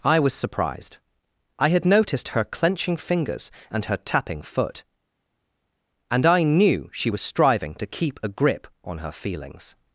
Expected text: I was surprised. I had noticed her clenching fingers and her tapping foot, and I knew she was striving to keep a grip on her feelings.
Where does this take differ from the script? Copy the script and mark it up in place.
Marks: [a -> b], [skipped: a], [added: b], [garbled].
I was surprised. I had noticed her clenching fingers and her tapping foot, and I knew she was striving to keep a grip on her feelings.